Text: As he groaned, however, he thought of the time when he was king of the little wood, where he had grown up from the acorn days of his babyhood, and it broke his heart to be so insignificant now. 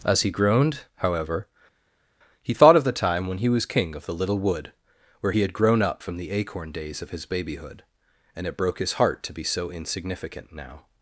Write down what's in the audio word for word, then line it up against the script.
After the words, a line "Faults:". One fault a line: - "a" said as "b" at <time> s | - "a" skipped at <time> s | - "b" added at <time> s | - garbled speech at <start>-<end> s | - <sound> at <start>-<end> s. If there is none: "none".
As he groaned, however, he thought of the time when he was king of the little wood, where he had grown up from the acorn days of his babyhood, and it broke his heart to be so insignificant now.
Faults:
none